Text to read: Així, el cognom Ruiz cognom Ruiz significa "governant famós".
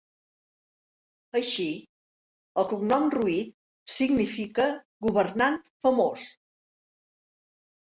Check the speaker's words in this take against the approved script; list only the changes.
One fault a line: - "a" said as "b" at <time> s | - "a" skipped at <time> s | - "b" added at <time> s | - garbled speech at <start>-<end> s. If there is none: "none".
- "cognom Ruiz" skipped at 3.5 s